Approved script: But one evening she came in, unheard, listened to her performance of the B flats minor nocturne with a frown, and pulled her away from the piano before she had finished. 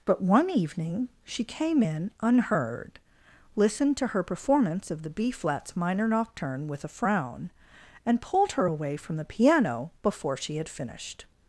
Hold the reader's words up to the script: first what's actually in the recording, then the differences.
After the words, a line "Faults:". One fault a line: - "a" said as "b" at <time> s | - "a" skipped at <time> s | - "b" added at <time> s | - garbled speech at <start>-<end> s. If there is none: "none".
But one evening she came in, unheard, listened to her performance of the B flats minor nocturne with a frown, and pulled her away from the piano before she had finished.
Faults:
none